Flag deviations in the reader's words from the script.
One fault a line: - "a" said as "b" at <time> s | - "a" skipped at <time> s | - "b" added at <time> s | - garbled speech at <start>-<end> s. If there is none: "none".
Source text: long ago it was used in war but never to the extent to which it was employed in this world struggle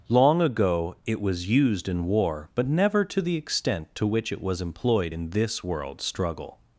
none